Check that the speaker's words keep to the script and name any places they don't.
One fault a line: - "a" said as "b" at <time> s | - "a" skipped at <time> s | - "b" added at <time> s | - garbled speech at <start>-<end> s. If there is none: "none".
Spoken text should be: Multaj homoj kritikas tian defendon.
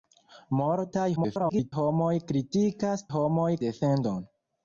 - garbled speech at 1.2-1.7 s
- "tian" said as "homoj" at 3.1 s